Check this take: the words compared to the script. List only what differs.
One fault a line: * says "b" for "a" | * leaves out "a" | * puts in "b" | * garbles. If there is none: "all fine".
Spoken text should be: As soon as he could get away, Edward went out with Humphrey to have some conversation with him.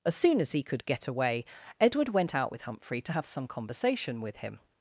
all fine